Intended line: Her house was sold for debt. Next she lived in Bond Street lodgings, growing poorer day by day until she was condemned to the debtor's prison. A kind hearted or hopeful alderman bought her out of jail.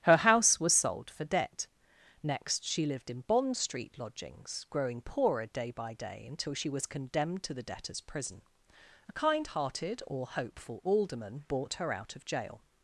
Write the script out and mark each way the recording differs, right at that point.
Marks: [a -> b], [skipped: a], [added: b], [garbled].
Her house was sold for debt. Next she lived in Bond Street lodgings, growing poorer day by day until she was condemned to the debtor's prison. A kind hearted or hopeful alderman bought her out of jail.